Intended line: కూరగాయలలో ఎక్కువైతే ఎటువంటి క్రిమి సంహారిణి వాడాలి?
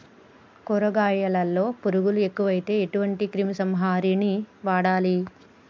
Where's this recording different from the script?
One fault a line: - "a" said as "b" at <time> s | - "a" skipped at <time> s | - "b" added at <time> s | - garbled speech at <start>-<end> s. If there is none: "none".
- "పురుగులు" added at 1.8 s